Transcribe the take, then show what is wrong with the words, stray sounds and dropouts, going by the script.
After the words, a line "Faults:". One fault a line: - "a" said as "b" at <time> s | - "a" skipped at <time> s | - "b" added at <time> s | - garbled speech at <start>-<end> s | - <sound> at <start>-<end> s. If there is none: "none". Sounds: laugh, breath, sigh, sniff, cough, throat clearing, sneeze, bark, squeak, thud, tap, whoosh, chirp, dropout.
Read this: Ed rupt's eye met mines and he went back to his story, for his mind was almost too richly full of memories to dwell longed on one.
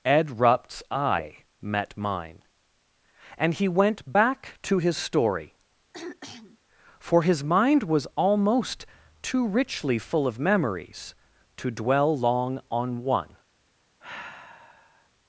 Ed rupt's eye met mine and he went back to his story, for his mind was almost too richly full of memories to dwell long on one.
Faults:
- "mines" said as "mine" at 1.9 s
- throat clearing at 5.9-6.6 s
- "longed" said as "long" at 12.2 s
- sigh at 14.0-15.1 s